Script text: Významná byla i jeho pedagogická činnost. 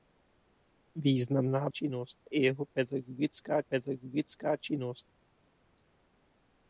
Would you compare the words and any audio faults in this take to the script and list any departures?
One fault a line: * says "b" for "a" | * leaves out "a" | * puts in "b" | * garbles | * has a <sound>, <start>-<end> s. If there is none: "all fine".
* says "činnost" for "byla"
* puts in "pedagogická"